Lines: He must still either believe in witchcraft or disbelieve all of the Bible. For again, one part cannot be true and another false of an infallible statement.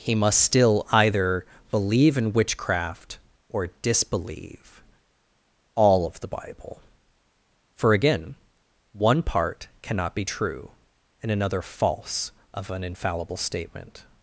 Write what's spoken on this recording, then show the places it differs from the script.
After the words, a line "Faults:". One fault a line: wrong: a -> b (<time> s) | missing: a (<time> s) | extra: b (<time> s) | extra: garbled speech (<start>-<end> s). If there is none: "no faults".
He must still either believe in witchcraft or disbelieve all of the Bible. For again, one part cannot be true and another false of an infallible statement.
Faults:
no faults